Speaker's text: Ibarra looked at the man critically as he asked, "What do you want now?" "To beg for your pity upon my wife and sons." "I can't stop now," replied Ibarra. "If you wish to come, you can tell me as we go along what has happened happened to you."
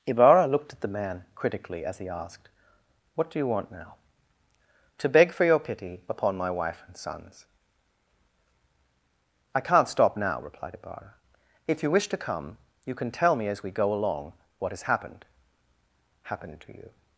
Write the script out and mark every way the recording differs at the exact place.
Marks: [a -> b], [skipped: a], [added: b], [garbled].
Ibarra looked at the man critically as he asked, "What do you want now?" "To beg for your pity upon my wife and sons." "I can't stop now," replied Ibarra. "If you wish to come, you can tell me as we go along what has happened happened to you."